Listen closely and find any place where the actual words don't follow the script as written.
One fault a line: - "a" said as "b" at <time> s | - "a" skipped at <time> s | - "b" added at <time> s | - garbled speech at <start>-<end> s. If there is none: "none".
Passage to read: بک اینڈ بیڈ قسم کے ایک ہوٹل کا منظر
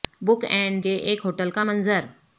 - "بیڈ قسم" skipped at 0.8 s